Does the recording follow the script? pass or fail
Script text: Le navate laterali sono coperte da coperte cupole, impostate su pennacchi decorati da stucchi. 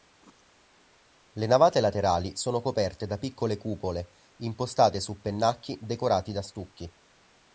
fail